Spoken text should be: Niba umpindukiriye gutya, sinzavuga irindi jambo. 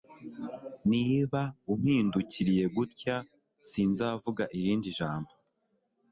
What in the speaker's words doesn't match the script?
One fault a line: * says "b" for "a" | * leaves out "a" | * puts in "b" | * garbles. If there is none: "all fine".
all fine